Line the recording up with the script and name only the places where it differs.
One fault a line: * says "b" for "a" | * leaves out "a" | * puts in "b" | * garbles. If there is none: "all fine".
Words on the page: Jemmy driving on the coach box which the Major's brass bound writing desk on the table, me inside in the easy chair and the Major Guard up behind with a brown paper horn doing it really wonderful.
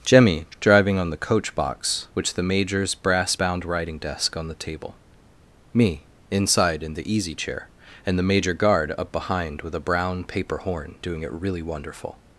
all fine